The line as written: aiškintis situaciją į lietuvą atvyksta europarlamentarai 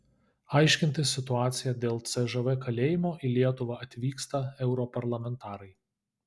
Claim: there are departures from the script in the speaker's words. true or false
true